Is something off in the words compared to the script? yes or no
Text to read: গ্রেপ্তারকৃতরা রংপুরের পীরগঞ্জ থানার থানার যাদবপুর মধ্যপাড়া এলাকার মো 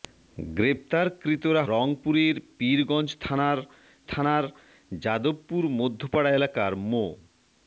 no